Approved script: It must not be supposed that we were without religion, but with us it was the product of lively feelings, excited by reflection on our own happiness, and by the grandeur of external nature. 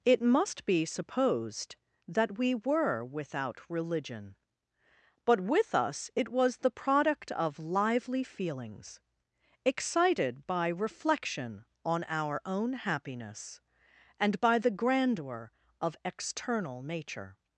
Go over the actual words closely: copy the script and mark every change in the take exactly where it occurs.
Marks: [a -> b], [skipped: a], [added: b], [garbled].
It must [skipped: not] be supposed that we were without religion, but with us it was the product of lively feelings, excited by reflection on our own happiness, and by the grandeur of external nature.